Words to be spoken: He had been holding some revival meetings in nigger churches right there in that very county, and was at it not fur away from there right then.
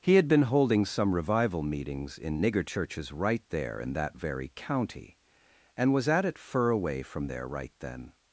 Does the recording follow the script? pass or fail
fail